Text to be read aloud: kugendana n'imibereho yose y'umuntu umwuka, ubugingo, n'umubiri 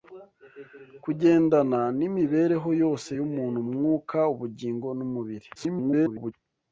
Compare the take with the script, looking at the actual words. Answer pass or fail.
fail